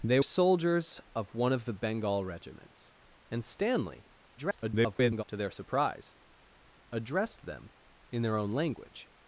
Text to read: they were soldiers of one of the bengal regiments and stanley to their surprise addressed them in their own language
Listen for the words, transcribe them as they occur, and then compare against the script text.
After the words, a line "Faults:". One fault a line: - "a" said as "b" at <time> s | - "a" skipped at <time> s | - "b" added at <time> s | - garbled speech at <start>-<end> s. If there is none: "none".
they soldiers of one of the bengal regiments and stanley [garbled] to their surprise addressed them in their own language
Faults:
- "were" skipped at 0.2 s
- garbled speech at 4.4-5.2 s